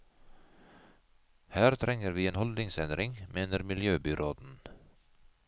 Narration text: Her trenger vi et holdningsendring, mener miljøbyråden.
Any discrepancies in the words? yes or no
yes